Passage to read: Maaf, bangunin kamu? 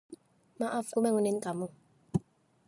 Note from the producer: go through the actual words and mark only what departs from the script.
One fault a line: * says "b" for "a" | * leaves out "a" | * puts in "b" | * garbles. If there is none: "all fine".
all fine